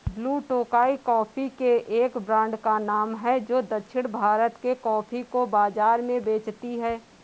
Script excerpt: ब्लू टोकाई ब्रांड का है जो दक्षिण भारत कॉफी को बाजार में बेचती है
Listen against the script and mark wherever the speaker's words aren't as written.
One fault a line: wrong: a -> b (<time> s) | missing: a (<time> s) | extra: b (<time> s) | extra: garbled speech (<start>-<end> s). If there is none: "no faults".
extra: कॉफी के एक (1.0 s)
extra: नाम (2.8 s)
extra: के (4.6 s)